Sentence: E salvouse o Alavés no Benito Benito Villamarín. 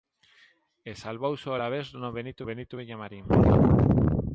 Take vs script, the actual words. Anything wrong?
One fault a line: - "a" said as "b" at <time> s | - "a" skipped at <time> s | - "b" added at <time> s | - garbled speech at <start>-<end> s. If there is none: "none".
none